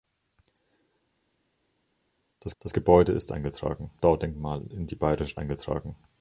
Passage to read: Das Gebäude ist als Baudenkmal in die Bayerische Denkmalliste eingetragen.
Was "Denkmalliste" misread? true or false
true